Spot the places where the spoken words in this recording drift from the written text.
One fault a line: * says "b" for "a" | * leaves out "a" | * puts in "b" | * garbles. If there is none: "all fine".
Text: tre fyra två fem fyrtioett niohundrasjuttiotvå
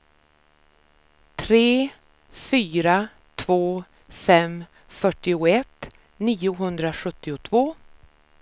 all fine